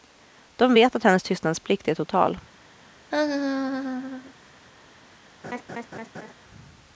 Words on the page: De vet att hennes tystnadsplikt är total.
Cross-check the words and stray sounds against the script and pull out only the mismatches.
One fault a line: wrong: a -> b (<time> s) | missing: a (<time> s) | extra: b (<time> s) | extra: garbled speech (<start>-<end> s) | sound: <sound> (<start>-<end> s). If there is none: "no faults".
sound: laugh (3.1-4.3 s)
sound: laugh (5.4-6.3 s)